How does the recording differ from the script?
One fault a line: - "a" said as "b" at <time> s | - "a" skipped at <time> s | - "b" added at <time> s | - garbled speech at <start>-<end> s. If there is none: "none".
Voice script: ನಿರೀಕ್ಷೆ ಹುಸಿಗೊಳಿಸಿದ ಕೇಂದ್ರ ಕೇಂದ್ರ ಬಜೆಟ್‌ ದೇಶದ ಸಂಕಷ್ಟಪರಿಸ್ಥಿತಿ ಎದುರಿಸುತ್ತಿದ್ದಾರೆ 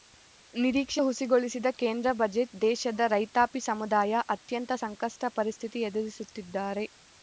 - "ಕೇಂದ್ರ" skipped at 2.1 s
- "ರೈತಾಪಿ ಸಮುದಾಯ ಅತ್ಯಂತ" added at 3.1 s